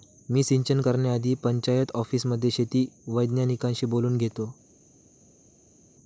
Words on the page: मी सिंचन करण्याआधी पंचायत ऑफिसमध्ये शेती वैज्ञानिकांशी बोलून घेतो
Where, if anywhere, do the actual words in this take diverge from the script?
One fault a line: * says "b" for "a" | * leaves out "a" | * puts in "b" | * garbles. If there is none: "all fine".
all fine